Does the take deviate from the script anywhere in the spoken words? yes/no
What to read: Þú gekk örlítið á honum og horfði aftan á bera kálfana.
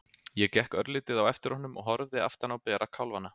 yes